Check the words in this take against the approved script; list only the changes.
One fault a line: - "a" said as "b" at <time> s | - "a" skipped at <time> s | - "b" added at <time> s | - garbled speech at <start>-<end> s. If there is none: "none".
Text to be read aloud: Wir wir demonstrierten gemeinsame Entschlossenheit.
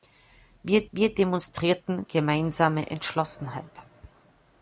none